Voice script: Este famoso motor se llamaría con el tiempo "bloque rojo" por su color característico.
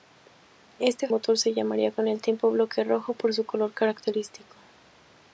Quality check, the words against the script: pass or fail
fail